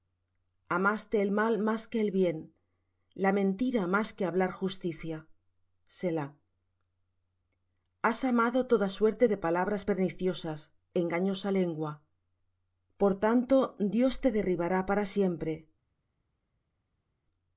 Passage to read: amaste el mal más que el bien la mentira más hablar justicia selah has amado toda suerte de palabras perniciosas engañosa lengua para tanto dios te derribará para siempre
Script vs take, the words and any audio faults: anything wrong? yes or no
yes